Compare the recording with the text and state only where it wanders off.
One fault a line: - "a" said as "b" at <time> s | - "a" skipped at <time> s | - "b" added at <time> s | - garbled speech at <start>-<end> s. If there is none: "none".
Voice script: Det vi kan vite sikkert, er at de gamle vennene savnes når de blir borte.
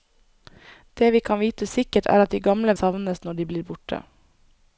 - "vennene" skipped at 2.8 s